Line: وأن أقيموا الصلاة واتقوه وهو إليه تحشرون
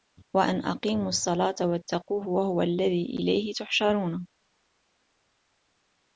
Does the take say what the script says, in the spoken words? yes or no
no